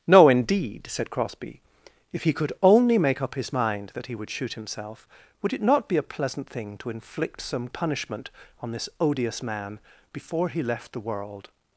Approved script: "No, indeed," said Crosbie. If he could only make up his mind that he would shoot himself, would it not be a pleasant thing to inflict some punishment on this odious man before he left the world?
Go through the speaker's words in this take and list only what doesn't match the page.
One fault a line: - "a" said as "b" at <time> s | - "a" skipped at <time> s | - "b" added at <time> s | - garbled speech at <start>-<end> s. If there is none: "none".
none